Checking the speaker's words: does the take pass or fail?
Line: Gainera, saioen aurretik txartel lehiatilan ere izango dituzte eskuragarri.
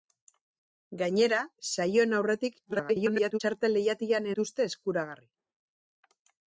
fail